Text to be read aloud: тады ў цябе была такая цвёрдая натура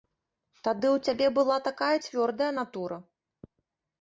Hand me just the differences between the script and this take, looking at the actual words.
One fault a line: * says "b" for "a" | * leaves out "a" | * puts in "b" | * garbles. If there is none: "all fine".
all fine